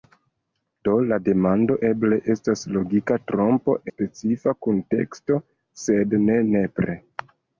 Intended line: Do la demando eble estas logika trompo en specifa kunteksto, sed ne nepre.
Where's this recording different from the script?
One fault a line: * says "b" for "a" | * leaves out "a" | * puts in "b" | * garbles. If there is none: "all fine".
* leaves out "en"